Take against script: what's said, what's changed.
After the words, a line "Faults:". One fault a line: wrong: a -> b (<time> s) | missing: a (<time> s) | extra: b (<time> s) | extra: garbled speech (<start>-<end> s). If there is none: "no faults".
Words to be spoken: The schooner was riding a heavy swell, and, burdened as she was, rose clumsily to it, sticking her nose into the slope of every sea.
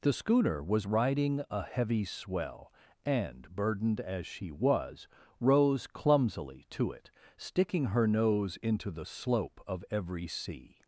The schooner was riding a heavy swell, and, burdened as she was, rose clumsily to it, sticking her nose into the slope of every sea.
Faults:
no faults